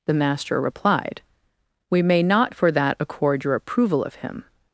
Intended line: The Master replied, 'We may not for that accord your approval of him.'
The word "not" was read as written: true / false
true